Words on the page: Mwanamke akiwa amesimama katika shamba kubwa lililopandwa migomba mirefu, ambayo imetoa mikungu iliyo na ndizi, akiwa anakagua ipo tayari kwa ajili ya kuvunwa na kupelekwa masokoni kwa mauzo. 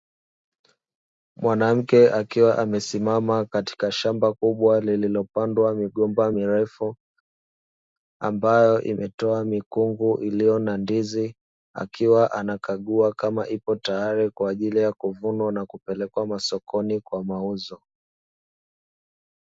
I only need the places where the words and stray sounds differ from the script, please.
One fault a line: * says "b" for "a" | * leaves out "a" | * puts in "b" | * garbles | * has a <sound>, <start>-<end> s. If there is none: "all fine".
* puts in "kama"